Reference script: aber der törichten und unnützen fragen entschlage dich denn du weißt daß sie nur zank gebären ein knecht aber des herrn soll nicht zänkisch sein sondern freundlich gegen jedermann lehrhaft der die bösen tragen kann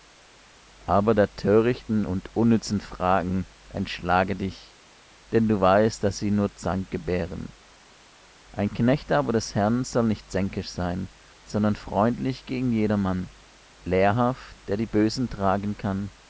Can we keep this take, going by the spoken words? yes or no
yes